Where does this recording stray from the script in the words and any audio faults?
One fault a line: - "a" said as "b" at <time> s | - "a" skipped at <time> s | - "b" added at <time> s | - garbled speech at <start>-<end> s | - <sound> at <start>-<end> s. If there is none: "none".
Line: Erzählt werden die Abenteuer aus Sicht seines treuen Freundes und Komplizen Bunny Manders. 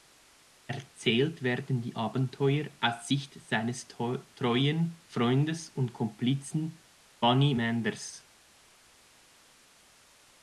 none